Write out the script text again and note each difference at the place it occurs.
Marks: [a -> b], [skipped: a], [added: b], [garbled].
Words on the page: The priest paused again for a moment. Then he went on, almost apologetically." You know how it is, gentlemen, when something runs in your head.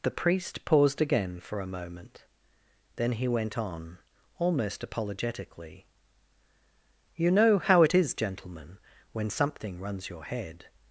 The priest paused again for a moment. Then he went on, almost apologetically." You know how it is, gentlemen, when something runs [skipped: in] your head.